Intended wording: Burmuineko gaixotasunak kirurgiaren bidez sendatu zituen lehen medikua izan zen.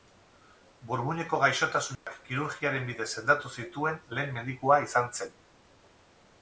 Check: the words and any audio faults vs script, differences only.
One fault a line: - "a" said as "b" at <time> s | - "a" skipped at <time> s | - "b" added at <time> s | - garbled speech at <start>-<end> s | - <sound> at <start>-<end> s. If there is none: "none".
- dropout at 2.0-2.1 s